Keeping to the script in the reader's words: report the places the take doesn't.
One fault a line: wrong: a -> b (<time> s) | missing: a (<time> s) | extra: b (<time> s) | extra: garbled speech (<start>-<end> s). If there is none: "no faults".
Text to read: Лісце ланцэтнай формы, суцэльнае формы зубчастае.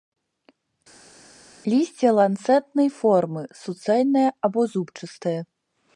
wrong: формы -> або (4.5 s)